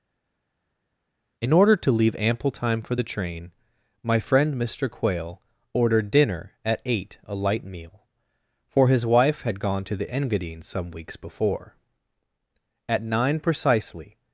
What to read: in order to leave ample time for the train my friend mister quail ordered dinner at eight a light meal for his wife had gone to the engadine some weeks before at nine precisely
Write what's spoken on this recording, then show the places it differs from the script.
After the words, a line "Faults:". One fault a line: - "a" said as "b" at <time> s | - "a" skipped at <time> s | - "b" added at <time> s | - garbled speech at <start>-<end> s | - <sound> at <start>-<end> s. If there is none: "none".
in order to leave ample time for the train my friend mister quail ordered dinner at eight a light meal for his wife had gone to the engadine some weeks before at nine precisely
Faults:
none